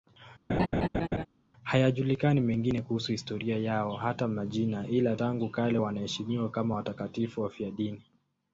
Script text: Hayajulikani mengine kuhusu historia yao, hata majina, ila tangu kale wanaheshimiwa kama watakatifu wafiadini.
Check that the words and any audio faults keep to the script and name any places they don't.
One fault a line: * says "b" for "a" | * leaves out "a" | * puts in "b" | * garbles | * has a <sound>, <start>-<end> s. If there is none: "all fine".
* has a laugh, 0.5-1.3 s